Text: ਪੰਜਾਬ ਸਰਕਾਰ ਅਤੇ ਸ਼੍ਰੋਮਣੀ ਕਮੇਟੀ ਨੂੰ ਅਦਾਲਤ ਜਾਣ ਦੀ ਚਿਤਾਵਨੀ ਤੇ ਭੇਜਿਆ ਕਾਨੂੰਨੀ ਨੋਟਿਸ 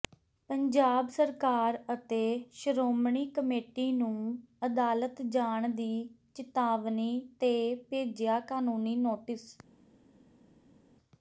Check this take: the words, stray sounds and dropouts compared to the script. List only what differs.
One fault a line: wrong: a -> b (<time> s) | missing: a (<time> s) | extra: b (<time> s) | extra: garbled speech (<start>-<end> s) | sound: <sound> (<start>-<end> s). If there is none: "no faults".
no faults